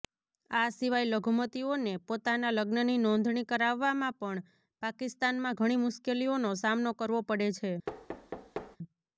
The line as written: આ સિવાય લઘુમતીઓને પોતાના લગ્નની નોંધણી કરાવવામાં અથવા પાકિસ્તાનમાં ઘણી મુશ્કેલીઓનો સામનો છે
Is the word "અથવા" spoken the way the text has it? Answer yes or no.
no